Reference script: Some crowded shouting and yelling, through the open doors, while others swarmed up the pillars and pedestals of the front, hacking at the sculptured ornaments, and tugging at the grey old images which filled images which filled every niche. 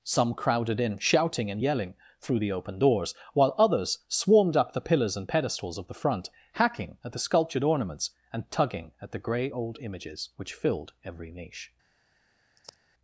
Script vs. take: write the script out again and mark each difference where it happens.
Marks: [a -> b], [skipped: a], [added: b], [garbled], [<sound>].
Some crowded [added: in] shouting and yelling, through the open doors, while others swarmed up the pillars and pedestals of the front, hacking at the sculptured ornaments, and tugging at the grey old images which filled [skipped: images which filled] every niche. [sigh]